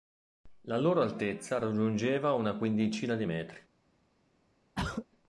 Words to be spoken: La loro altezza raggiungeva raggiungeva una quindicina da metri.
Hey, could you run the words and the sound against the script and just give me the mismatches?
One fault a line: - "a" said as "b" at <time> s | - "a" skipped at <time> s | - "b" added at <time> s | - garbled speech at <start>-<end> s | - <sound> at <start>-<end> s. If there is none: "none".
- "raggiungeva" skipped at 2.3 s
- "da" said as "di" at 3.1 s
- throat clearing at 4.8-5.1 s